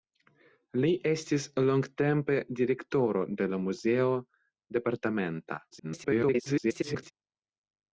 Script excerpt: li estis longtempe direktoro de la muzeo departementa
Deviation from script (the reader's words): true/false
true